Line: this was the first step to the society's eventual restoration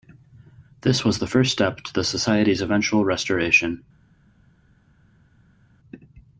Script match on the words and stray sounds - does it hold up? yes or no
yes